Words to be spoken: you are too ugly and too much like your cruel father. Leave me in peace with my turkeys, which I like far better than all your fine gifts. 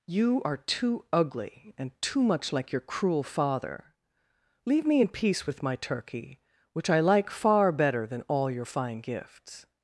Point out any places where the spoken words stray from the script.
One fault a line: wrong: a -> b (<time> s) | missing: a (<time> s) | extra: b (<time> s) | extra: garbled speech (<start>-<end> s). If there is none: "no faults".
wrong: turkeys -> turkey (5.8 s)